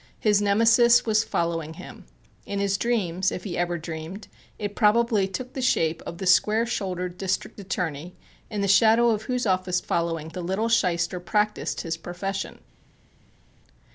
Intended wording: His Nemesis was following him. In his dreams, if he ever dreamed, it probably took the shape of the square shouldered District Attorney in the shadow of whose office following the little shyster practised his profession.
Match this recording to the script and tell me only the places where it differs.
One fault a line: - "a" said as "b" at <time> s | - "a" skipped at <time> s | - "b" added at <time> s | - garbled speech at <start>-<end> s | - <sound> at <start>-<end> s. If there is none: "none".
none